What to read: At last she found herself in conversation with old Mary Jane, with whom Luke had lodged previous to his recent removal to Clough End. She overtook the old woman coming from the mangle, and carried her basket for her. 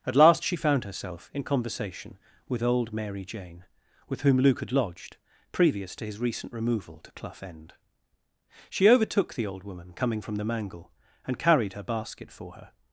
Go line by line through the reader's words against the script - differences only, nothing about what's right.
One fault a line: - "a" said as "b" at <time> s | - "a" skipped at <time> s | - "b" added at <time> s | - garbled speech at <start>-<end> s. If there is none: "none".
none